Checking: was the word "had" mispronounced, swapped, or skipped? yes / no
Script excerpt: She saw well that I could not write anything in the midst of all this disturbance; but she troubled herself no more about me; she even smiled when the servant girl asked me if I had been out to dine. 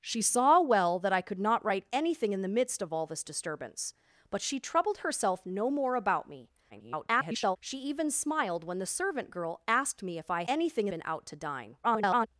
yes